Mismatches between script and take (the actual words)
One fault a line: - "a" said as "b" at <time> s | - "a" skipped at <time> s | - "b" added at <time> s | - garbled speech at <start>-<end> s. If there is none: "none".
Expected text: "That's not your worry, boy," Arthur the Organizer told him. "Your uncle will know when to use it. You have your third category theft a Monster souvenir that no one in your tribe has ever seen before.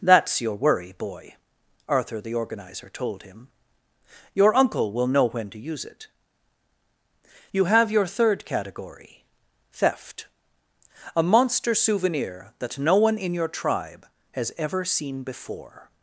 - "not" skipped at 0.4 s